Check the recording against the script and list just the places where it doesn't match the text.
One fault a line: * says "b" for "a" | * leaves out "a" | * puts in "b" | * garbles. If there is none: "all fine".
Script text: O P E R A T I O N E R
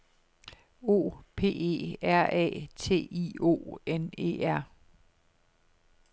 all fine